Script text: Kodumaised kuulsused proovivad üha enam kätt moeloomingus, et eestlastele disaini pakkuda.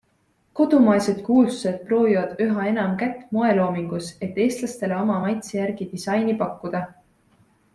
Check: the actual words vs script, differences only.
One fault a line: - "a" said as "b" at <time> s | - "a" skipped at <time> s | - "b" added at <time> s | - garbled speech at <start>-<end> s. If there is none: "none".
- "oma maitse järgi" added at 5.0 s